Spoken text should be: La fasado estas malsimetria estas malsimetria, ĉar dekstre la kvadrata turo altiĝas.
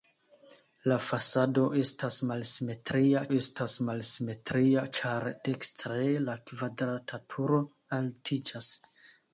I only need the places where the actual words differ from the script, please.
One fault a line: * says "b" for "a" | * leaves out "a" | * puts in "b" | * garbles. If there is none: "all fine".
all fine